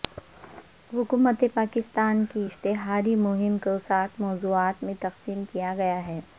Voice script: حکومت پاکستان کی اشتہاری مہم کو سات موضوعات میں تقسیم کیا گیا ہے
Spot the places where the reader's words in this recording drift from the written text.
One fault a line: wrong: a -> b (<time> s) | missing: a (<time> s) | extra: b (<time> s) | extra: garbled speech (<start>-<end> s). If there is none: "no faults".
no faults